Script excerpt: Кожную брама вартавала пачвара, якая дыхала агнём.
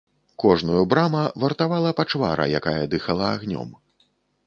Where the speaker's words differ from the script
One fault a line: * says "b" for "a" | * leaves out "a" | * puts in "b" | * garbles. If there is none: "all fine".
all fine